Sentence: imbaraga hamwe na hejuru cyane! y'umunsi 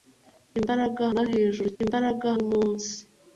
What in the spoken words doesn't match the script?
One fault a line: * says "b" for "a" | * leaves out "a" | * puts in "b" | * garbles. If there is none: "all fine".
* leaves out "hamwe"
* says "imbaraga" for "cyane"